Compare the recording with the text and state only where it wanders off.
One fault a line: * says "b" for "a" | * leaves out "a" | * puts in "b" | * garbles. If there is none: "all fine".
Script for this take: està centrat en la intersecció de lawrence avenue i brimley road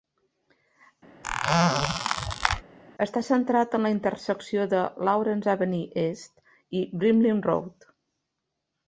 * puts in "east"